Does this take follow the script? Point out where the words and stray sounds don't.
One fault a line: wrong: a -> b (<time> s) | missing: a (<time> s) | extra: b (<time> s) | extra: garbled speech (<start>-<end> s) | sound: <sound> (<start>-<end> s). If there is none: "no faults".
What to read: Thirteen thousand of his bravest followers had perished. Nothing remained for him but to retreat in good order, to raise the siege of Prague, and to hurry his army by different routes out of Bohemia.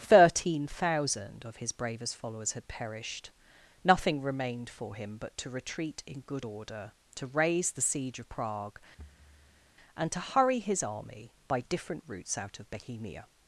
sound: thud (9.0-9.7 s)